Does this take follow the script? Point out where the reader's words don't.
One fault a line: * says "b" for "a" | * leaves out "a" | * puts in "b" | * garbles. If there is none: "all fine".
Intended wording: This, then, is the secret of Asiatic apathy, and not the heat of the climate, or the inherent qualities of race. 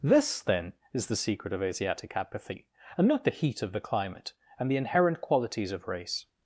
* says "and" for "or"